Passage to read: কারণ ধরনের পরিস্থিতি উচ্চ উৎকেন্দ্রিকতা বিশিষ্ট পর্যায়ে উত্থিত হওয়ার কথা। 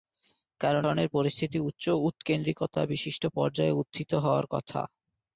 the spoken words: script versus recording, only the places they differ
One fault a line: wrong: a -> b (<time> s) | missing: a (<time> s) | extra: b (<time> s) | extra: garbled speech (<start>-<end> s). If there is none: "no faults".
no faults